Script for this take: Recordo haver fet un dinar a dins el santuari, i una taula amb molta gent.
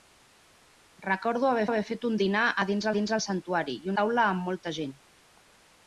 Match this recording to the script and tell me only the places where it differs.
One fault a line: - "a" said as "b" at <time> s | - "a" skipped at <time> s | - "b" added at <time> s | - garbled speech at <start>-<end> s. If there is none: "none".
- "haver" added at 1.7 s
- "dins" added at 3.0 s
- "una" skipped at 4.0 s